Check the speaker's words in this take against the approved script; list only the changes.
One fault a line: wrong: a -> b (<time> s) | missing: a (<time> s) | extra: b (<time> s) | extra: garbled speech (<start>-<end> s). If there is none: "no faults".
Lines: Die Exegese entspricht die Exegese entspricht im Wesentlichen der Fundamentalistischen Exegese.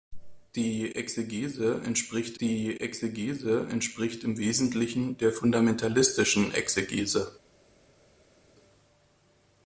no faults